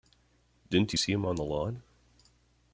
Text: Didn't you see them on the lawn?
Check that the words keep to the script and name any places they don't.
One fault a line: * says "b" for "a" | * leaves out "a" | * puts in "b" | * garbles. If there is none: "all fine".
* says "him" for "them"